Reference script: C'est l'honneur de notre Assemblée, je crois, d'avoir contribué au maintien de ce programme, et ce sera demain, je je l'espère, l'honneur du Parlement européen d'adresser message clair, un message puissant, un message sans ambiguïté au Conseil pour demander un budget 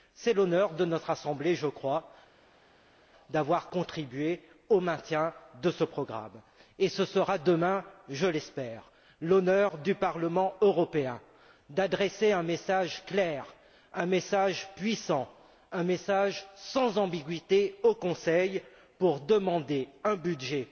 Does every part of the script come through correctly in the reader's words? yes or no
no